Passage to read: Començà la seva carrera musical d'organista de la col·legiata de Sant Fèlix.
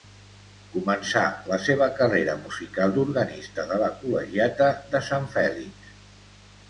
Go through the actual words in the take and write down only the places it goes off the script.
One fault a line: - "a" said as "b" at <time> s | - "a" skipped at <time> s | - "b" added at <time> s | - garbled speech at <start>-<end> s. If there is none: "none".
none